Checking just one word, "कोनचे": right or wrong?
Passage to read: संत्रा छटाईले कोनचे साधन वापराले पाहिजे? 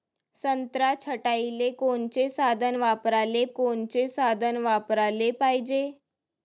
right